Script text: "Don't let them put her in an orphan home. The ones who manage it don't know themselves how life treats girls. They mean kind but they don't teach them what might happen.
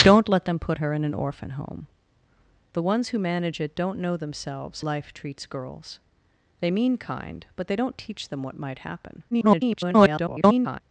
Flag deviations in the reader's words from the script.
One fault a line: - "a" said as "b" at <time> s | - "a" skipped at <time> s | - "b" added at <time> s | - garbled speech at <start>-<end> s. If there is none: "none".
- "how" skipped at 4.8 s
- garbled speech at 9.3-10.8 s